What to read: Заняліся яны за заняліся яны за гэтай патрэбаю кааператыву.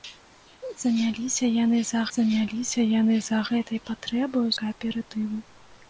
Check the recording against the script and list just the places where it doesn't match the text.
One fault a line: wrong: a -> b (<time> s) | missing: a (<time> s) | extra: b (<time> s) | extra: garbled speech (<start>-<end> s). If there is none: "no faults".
no faults